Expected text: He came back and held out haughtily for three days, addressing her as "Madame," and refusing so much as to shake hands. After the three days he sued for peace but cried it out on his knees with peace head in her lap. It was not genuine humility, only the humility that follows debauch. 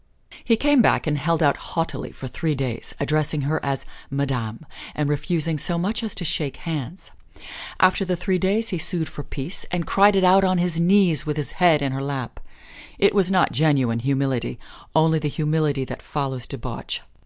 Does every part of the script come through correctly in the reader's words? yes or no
no